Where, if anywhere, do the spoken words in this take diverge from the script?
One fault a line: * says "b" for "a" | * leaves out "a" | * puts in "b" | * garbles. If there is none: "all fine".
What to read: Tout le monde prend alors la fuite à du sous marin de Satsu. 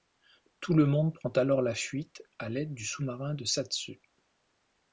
* puts in "l'aide"